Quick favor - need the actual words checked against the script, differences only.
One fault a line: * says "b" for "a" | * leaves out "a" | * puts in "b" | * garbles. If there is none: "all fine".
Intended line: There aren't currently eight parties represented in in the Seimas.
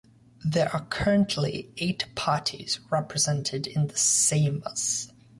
* says "are" for "aren't"
* leaves out "in"